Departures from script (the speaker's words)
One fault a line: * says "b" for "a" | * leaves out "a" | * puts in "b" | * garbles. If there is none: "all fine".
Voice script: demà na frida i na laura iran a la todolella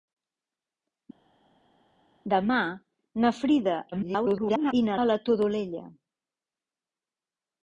* garbles
* leaves out "laura iran"